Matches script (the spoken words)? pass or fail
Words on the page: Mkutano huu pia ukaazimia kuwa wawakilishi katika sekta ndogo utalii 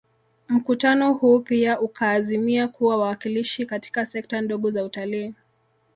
fail